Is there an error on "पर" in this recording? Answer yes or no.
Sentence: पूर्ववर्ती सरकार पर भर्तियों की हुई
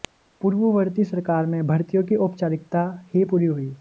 yes